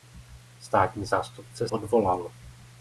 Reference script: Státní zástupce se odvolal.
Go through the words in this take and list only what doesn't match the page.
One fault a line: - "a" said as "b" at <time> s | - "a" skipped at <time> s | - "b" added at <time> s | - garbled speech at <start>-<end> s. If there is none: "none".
- "se" skipped at 1.7 s